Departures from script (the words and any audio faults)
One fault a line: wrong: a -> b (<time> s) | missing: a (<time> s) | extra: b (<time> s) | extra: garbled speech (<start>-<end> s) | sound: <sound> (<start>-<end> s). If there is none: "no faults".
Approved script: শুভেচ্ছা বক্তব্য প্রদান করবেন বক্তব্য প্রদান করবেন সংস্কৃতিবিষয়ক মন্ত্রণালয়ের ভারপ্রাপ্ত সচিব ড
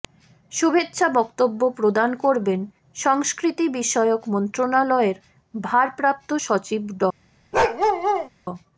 missing: বক্তব্য প্রদান করবেন (2.6 s)
sound: bark (7.5-8.3 s)